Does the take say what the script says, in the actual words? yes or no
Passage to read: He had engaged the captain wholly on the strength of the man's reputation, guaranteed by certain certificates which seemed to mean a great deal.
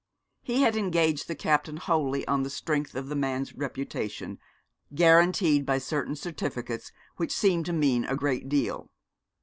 yes